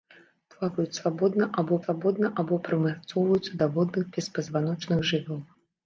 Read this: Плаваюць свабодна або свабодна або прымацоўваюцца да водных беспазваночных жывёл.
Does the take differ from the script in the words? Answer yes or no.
no